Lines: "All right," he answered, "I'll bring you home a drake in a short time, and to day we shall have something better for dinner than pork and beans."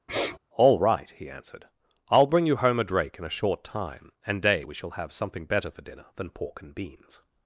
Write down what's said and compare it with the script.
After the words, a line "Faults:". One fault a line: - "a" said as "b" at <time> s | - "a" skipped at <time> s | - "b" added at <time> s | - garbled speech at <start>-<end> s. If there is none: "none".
"All right," he answered, "I'll bring you home a drake in a short time, and day we shall have something better for dinner than pork and beans."
Faults:
- "to" skipped at 4.4 s